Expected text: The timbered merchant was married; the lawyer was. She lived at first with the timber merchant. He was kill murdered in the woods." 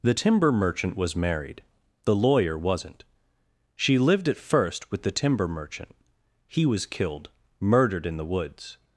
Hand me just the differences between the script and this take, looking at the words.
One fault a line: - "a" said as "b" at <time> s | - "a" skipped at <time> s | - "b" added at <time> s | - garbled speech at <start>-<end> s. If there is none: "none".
- "timbered" said as "timber" at 0.1 s
- "was" said as "wasn't" at 2.6 s
- "kill" said as "killed" at 6.9 s